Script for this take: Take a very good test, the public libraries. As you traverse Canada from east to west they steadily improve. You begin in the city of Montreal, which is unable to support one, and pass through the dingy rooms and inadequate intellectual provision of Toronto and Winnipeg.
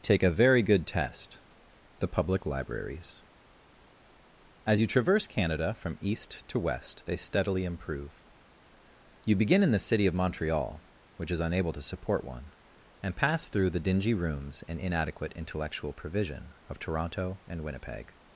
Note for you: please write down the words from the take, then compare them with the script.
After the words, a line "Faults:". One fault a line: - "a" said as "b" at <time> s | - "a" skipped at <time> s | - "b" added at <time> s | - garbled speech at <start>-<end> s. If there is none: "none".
Take a very good test, the public libraries. As you traverse Canada from east to west they steadily improve. You begin in the city of Montreal, which is unable to support one, and pass through the dingy rooms and inadequate intellectual provision of Toronto and Winnipeg.
Faults:
none